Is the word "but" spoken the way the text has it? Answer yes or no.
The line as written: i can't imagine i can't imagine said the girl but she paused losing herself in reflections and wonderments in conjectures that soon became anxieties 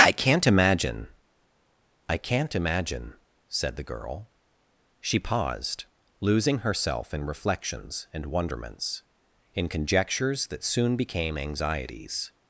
no